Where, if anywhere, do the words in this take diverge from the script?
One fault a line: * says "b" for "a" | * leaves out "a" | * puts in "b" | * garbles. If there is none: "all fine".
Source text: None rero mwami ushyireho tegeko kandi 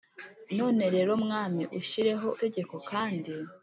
all fine